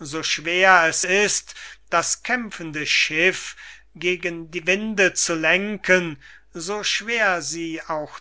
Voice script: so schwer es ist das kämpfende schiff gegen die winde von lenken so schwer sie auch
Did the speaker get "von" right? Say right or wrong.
wrong